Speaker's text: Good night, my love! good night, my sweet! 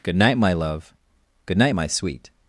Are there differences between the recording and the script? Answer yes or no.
no